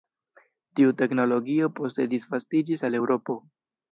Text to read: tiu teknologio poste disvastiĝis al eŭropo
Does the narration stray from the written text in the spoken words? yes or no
no